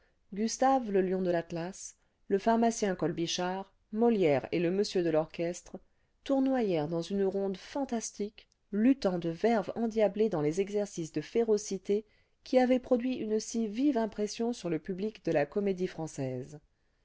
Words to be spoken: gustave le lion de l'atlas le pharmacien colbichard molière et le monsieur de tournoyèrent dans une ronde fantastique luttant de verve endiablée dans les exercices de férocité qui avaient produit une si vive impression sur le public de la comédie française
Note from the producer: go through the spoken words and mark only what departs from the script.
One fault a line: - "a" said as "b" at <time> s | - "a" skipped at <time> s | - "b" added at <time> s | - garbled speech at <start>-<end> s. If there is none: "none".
- "l'orchestre" added at 5.1 s